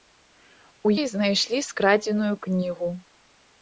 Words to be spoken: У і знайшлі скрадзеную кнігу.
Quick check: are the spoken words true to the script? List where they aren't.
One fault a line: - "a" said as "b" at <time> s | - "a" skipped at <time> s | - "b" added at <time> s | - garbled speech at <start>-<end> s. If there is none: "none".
none